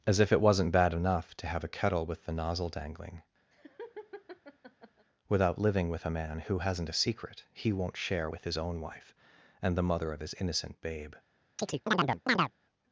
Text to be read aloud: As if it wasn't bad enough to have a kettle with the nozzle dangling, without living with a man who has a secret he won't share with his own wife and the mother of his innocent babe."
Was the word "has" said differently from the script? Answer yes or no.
yes